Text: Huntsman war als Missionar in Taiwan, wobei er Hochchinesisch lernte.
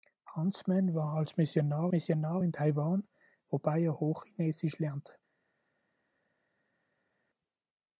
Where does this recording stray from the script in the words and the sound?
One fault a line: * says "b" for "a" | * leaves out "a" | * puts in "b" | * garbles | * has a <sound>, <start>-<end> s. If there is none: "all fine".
* puts in "Missionar"